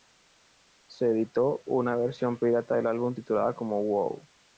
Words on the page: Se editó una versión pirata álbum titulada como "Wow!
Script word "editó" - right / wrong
right